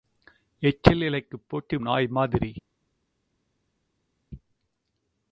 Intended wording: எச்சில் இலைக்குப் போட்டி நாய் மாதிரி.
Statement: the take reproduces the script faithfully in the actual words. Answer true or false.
true